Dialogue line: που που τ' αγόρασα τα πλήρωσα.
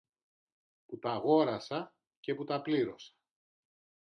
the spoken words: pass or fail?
fail